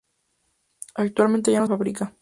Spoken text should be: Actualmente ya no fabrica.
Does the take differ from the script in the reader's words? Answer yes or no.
no